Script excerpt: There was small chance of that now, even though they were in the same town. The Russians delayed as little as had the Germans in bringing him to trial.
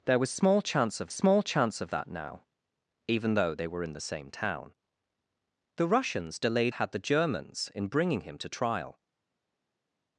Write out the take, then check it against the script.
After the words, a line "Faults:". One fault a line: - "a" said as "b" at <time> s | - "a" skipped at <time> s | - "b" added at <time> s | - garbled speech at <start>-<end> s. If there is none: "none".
There was small chance of small chance of that now, even though they were in the same town. The Russians delayed had the Germans in bringing him to trial.
Faults:
- "small chance of" added at 1.1 s
- "as little as" skipped at 6.7 s